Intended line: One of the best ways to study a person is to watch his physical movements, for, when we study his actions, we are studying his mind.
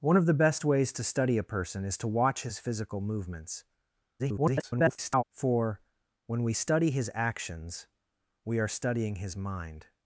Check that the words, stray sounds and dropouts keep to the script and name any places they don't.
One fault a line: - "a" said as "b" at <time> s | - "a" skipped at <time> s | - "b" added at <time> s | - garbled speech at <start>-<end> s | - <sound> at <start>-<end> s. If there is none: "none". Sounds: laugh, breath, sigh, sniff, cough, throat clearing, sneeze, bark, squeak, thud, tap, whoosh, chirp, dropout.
- garbled speech at 4.2-5.2 s